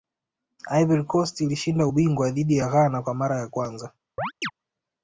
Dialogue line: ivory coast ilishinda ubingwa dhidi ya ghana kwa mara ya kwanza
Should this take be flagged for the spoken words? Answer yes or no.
no